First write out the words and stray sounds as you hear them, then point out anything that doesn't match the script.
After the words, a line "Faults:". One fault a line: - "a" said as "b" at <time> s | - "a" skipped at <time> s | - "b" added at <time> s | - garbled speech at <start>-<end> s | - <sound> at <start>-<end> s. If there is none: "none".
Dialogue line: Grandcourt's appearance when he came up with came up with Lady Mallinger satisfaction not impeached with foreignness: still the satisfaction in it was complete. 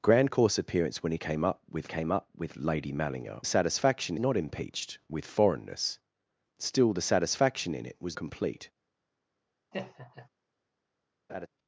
Grandcourt's appearance when he came up with came up with Lady Mallinger satisfaction not impeached with foreignness: still the satisfaction in it was complete.
Faults:
- laugh at 9.7-10.3 s
- laugh at 11.3-11.5 s